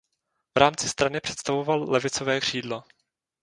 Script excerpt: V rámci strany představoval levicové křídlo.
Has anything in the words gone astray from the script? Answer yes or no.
no